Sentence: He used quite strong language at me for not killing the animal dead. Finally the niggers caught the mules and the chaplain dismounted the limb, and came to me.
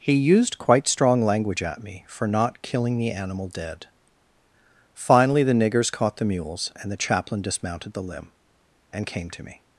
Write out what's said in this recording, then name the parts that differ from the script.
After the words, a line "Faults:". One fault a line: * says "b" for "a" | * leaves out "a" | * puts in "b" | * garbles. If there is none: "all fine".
He used quite strong language at me for not killing the animal dead. Finally the niggers caught the mules and the chaplain dismounted the limb, and came to me.
Faults:
all fine